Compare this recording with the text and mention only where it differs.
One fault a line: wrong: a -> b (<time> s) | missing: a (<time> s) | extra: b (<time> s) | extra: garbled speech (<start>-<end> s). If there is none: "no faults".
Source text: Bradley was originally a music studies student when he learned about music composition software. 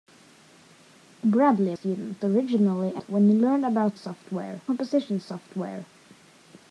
wrong: was -> student (1.7 s)
missing: music studies student (3.0 s)
wrong: music -> software (3.9 s)